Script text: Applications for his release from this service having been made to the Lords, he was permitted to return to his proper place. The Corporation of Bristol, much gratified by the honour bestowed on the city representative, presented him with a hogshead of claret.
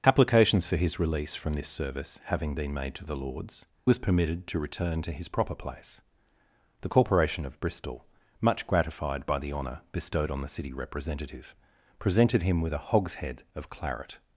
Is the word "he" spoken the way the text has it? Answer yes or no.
no